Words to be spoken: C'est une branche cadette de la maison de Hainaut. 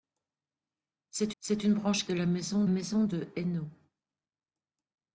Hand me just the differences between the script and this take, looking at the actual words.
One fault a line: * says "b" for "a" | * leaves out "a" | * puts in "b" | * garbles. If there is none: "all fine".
* puts in "c'est"
* leaves out "cadette"
* puts in "maison"